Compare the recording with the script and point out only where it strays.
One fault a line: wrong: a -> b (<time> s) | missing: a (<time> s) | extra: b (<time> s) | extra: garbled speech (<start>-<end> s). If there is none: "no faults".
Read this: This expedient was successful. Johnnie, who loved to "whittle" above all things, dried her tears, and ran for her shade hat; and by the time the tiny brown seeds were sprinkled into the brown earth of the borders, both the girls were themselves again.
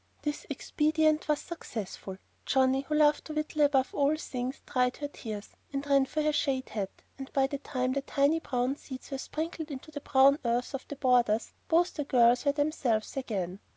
no faults